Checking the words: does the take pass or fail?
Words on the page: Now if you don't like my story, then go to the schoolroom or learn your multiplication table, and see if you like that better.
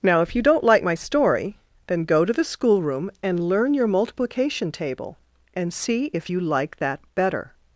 fail